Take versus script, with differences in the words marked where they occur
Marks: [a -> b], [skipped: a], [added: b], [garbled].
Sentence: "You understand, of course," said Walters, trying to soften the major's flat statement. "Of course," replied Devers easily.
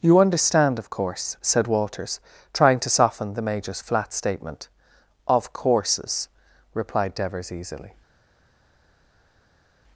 "You understand, of course," said Walters, trying to soften the major's flat statement. "Of [course," -> courses] replied Devers easily.